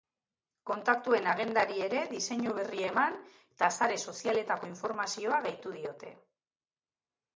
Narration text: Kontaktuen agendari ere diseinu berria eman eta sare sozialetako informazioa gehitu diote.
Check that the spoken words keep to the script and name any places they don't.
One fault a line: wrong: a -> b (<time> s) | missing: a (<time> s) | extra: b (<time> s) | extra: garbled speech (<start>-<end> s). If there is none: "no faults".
no faults